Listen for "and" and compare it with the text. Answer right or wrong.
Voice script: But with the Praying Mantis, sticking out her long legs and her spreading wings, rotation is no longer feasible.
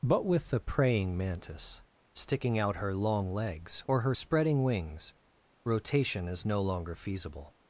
wrong